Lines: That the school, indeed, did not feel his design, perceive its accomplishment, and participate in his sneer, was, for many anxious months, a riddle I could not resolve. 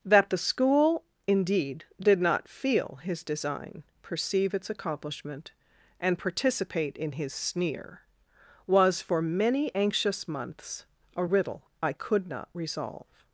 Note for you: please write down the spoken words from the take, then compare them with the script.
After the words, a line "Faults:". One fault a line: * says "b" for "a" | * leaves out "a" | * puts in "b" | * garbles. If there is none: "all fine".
That the school, indeed, did not feel his design, perceive its accomplishment, and participate in his sneer, was, for many anxious months, a riddle I could not resolve.
Faults:
all fine